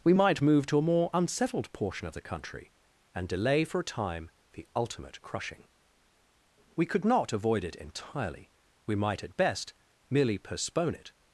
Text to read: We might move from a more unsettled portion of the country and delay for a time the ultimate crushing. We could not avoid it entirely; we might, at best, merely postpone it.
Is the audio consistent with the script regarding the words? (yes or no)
no